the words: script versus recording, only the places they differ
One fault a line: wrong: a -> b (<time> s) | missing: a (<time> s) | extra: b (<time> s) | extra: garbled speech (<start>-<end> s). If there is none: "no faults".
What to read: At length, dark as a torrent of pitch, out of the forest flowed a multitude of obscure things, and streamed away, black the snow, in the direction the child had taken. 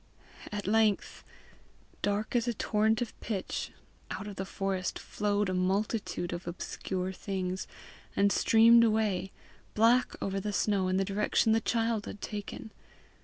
extra: over (10.2 s)